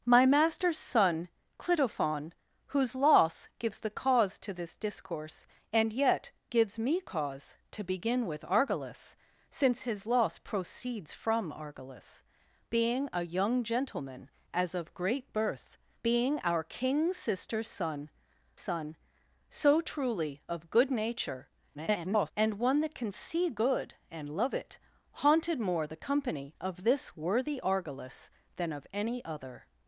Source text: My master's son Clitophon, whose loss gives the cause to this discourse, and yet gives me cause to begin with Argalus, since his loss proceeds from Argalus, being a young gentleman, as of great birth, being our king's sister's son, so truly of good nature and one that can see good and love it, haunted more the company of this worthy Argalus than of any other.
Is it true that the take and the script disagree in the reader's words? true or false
true